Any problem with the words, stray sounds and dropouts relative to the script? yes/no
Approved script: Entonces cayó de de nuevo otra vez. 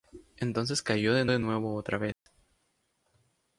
yes